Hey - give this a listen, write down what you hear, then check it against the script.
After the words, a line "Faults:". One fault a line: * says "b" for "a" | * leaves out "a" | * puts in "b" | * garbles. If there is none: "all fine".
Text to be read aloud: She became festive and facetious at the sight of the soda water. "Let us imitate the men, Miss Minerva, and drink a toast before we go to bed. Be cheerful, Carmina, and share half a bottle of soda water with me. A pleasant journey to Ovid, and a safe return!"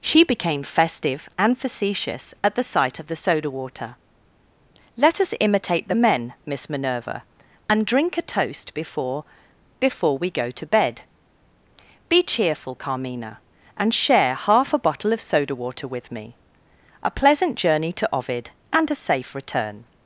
She became festive and facetious at the sight of the soda water. "Let us imitate the men, Miss Minerva, and drink a toast before before we go to bed. Be cheerful, Carmina, and share half a bottle of soda water with me. A pleasant journey to Ovid, and a safe return!"
Faults:
* puts in "before"